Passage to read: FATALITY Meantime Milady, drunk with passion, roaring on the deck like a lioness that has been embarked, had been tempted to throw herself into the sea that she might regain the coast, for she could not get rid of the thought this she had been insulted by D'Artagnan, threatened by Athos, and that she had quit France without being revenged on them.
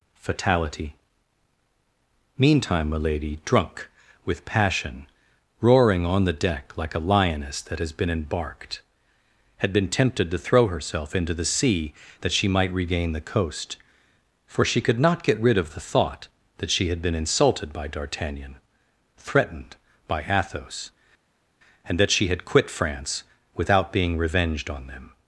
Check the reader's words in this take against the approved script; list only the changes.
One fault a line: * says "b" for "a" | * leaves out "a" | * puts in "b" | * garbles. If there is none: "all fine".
* says "that" for "this"